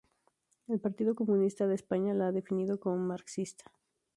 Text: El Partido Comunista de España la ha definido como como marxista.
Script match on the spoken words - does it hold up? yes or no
no